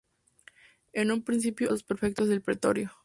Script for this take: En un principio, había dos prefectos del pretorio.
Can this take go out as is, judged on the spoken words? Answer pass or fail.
fail